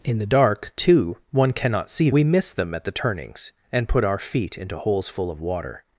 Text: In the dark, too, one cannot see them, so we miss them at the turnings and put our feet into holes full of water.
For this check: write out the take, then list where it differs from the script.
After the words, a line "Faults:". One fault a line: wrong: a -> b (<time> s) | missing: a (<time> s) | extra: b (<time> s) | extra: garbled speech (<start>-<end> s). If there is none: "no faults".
In the dark, too, one cannot see we miss them at the turnings and put our feet into holes full of water.
Faults:
missing: them so (2.1 s)